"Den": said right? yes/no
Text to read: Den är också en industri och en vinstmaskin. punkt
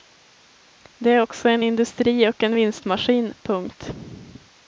no